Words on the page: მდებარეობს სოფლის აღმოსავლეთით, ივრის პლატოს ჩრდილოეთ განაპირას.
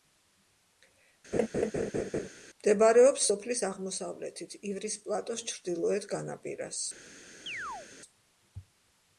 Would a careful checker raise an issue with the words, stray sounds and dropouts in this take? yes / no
yes